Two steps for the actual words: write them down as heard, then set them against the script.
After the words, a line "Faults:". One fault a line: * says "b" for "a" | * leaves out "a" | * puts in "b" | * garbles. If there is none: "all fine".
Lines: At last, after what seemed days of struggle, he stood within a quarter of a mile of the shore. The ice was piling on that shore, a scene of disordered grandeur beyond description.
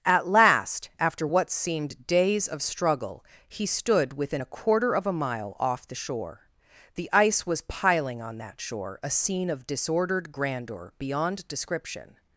At last, after what seemed days of struggle, he stood within a quarter of a mile off the shore. The ice was piling on that shore, a scene of disordered grandeur beyond description.
Faults:
* says "off" for "of"